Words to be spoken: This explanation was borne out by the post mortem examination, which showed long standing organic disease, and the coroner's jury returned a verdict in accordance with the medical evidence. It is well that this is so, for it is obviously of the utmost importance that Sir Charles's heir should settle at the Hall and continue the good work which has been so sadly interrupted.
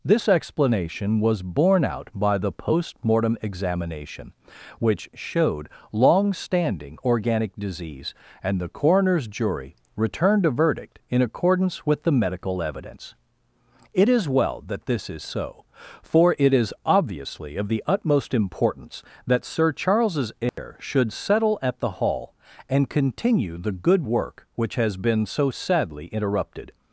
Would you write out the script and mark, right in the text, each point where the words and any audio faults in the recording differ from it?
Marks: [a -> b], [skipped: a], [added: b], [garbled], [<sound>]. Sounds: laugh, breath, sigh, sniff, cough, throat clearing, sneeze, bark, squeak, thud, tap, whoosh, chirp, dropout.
This explanation was borne out by the post mortem examination, which showed long standing organic disease, and the coroner's jury returned a verdict in accordance with the medical evidence. It is well that this is so, for it is obviously of the utmost importance that Sir Charles's heir [dropout] should settle at the Hall and continue the good work which has been so sadly interrupted.